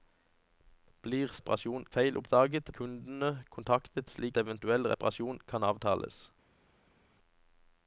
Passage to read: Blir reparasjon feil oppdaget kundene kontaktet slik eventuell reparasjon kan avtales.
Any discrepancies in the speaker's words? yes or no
no